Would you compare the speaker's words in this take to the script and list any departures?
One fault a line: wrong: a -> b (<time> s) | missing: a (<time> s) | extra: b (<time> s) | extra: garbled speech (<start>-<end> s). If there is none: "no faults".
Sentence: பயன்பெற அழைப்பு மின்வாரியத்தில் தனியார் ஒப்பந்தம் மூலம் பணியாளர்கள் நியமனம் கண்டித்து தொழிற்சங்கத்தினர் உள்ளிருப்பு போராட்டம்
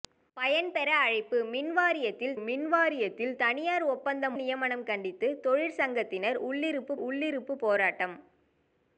extra: மின்வாரியத்தில் (2.4 s)
missing: மூலம் பணியாளர்கள் (4.4 s)
extra: உள்ளிருப்பு (7.0 s)